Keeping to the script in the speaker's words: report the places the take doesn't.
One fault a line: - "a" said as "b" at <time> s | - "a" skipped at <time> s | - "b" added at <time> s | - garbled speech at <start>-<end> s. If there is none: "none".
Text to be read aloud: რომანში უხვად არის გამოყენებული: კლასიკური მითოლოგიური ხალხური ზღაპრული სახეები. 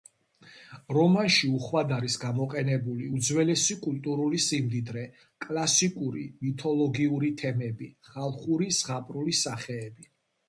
- "უძველესი კულტურული სიმდიდრე" added at 3.2 s
- "თემები" added at 7.4 s